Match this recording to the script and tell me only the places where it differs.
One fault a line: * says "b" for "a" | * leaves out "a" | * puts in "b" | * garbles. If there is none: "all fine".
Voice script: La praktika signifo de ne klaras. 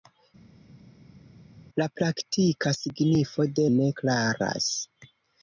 all fine